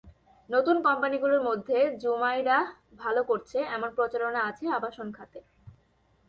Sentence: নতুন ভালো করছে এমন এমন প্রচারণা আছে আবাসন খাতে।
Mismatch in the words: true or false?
true